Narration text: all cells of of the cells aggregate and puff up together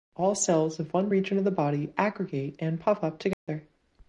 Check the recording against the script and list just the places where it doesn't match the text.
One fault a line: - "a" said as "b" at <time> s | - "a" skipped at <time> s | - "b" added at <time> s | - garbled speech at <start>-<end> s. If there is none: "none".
- "one region" added at 0.9 s
- "cells" said as "body" at 1.5 s